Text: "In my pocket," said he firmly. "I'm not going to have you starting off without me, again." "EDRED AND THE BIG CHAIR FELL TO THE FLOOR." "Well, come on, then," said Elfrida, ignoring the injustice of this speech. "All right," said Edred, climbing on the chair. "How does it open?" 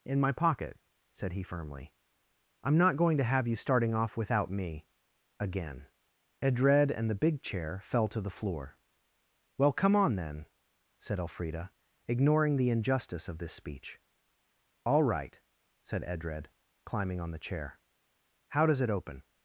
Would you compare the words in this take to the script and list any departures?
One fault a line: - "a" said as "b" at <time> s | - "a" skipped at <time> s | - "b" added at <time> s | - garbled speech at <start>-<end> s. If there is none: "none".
none